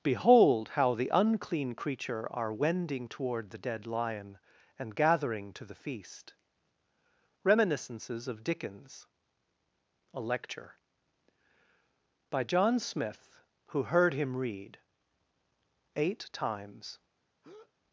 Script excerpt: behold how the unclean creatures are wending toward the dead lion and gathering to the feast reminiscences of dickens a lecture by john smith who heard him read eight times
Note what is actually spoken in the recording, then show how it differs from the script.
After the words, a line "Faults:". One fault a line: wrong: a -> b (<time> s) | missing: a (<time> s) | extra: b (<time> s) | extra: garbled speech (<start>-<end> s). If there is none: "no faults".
behold how the unclean creature are wending toward the dead lion and gathering to the feast reminiscences of dickens a lecture by john smith who heard him read eight times
Faults:
wrong: creatures -> creature (1.8 s)